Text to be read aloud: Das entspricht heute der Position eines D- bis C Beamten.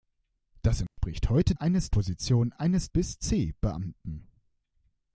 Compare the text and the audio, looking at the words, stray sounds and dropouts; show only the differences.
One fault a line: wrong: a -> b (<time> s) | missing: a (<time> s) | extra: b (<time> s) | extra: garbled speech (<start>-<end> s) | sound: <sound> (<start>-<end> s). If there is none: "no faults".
sound: dropout (0.9-1.0 s)
wrong: der -> eines (1.5 s)
missing: D (2.9 s)